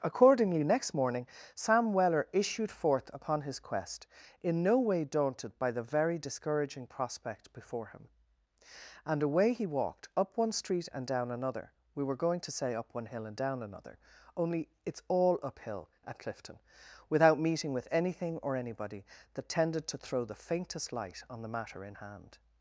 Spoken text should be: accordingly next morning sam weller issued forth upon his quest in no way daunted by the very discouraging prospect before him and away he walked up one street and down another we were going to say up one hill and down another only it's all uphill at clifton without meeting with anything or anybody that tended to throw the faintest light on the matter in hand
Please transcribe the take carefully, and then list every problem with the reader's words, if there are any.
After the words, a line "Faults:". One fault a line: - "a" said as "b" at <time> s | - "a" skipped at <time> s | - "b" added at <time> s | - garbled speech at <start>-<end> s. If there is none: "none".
accordingly next morning sam weller issued forth upon his quest in no way daunted by the very discouraging prospect before him and away he walked up one street and down another we were going to say up one hill and down another only it's all uphill at clifton without meeting with anything or anybody that tended to throw the faintest light on the matter in hand
Faults:
none